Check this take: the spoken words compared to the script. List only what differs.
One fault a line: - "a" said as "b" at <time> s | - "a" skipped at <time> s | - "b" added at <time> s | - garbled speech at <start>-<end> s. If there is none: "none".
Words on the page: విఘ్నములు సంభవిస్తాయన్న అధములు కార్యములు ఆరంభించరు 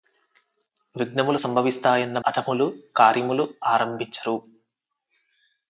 none